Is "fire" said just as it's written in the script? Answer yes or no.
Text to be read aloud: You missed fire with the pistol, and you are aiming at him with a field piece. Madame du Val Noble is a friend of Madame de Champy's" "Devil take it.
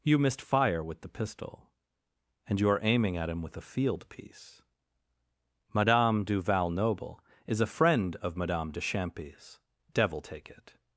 yes